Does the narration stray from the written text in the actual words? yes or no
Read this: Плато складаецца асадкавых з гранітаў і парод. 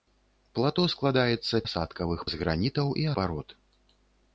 no